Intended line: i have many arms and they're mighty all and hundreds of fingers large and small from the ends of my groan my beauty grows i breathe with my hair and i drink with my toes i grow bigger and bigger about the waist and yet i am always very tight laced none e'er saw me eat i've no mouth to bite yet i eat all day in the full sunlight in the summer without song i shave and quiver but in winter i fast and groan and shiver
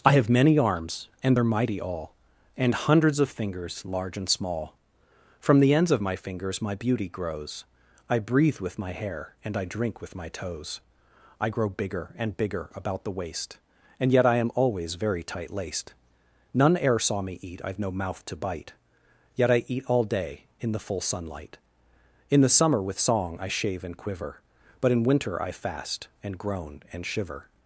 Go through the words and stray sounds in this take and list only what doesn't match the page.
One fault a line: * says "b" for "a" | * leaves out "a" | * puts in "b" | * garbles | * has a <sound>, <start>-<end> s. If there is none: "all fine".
* says "fingers" for "groan"
* says "with" for "without"